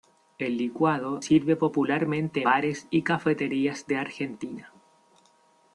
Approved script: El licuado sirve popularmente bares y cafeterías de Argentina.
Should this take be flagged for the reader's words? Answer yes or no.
no